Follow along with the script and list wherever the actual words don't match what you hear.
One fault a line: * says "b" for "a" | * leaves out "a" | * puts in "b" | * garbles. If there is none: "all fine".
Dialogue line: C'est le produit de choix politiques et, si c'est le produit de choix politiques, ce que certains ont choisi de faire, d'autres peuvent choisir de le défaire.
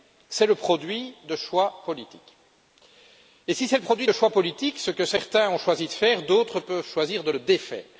all fine